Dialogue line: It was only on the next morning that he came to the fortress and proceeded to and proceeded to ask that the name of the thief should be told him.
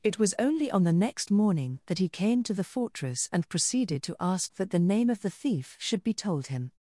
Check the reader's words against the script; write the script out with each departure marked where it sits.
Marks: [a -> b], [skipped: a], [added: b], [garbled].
It was only on the next morning that he came to the fortress and proceeded to [skipped: and proceeded to] ask that the name of the thief should be told him.